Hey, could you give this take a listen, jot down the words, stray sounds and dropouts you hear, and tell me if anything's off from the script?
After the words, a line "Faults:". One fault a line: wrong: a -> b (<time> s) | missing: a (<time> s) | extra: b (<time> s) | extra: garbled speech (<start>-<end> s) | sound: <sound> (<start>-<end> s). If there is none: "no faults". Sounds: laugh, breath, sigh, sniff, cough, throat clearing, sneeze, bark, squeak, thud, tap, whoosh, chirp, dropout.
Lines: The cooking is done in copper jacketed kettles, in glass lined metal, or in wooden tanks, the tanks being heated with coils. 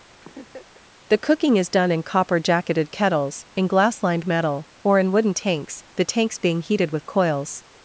The cooking is done in copper jacketed kettles, in glass lined metal, or in wooden tanks, the tanks being heated with coils.
Faults:
sound: laugh (0.2-0.9 s)